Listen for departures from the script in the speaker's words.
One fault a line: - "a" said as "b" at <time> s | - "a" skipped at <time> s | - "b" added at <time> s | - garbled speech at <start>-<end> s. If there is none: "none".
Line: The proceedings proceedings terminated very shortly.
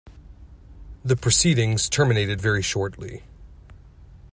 - "proceedings" skipped at 1.9 s